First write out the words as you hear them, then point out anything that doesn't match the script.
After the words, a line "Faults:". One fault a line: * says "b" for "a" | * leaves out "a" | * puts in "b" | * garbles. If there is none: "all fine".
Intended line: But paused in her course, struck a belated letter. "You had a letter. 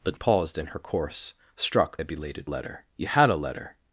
But paused in her course, struck a belated letter. "You had a letter.
Faults:
all fine